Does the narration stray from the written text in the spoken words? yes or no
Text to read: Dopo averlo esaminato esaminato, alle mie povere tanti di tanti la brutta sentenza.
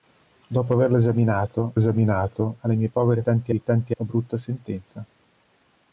no